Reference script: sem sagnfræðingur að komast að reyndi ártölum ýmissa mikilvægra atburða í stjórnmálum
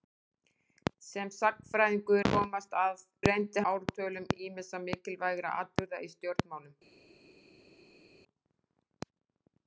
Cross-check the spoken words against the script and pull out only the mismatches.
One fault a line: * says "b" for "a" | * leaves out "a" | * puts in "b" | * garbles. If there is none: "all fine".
all fine